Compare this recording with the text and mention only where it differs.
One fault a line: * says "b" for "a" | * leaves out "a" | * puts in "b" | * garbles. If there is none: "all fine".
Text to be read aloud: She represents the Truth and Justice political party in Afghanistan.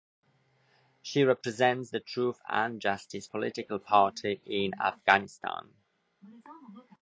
all fine